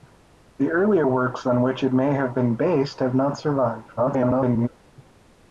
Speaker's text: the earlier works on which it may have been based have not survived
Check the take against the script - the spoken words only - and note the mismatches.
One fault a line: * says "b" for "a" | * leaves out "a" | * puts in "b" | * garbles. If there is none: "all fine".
* garbles